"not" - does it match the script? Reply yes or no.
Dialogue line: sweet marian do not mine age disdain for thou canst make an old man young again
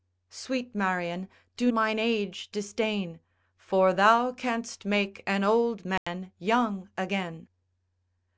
no